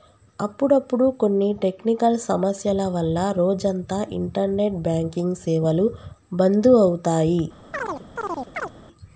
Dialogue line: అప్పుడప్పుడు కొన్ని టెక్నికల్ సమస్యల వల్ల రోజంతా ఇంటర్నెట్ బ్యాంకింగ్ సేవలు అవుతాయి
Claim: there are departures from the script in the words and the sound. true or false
true